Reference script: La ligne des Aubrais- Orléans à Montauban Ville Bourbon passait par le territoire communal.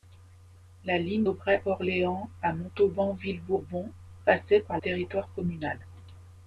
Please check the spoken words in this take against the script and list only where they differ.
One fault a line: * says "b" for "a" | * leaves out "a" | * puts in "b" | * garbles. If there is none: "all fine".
* leaves out "des"
* leaves out "le"